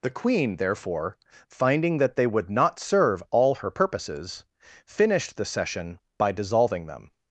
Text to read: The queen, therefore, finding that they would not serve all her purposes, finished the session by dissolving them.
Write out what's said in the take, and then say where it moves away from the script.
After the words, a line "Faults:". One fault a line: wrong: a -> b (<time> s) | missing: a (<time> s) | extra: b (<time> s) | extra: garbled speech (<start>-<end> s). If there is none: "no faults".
The queen, therefore, finding that they would not serve all her purposes, finished the session by dissolving them.
Faults:
no faults